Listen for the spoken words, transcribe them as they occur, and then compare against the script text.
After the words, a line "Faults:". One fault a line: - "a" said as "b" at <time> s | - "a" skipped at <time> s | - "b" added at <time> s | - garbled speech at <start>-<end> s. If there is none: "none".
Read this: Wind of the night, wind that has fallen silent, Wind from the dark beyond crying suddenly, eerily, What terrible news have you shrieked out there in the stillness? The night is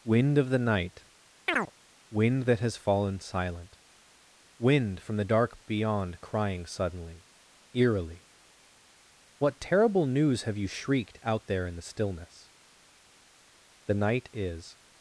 Wind of the night, wind that has fallen silent, Wind from the dark beyond crying suddenly, eerily, What terrible news have you shrieked out there in the stillness? The night is
Faults:
none